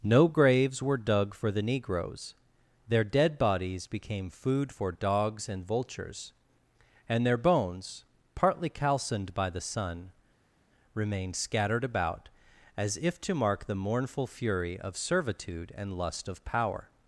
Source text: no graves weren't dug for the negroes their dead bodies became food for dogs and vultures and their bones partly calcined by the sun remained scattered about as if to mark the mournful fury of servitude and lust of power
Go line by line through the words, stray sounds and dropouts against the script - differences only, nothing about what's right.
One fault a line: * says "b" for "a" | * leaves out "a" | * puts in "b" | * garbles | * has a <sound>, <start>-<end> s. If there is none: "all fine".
* says "were" for "weren't"